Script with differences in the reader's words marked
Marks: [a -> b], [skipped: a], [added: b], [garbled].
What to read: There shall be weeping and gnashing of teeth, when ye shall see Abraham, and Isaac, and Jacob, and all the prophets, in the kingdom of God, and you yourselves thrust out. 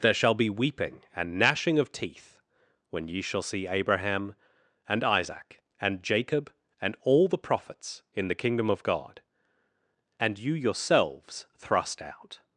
There shall be weeping and gnashing of teeth, when ye shall see Abraham, and Isaac, and Jacob, and all the prophets, in the kingdom of God, and you yourselves thrust out.